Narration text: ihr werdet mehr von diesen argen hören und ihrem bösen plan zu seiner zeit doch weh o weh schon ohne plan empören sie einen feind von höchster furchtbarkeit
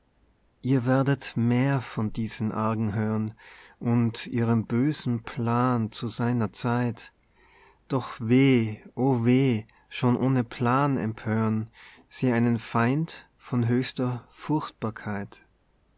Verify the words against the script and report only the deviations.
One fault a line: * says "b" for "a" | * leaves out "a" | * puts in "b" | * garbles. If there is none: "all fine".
all fine